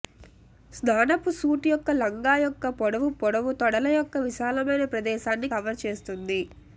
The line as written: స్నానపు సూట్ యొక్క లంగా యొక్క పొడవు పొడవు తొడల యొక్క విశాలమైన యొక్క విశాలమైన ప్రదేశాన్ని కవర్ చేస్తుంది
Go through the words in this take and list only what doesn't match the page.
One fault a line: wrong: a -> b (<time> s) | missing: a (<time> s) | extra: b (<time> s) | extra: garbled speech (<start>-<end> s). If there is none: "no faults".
missing: యొక్క విశాలమైన (4.8 s)